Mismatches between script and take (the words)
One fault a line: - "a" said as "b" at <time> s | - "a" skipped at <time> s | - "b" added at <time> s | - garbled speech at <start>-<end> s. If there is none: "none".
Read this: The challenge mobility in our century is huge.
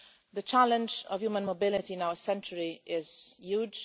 - "of human" added at 1.1 s